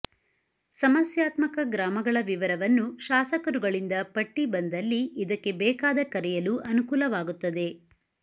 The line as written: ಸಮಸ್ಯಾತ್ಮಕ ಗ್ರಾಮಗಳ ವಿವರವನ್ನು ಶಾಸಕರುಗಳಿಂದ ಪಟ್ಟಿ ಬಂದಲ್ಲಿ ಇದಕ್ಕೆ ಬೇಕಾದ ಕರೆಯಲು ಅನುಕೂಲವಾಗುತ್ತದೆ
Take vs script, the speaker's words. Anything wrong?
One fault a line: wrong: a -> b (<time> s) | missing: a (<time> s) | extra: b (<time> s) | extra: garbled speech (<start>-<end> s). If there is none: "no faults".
no faults